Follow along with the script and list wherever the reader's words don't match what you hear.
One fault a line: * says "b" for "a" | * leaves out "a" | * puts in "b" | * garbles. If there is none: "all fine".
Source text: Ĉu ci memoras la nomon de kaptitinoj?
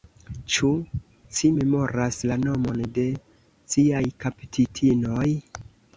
* puts in "ciaj"